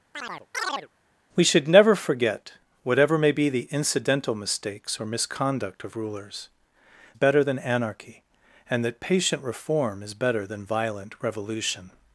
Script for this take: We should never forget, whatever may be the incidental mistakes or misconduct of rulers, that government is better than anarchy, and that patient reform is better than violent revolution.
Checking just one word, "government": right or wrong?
wrong